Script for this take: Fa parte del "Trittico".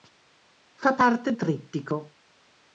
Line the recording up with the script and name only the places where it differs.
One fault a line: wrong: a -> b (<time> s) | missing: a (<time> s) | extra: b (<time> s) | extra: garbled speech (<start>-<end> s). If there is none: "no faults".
missing: del (1.3 s)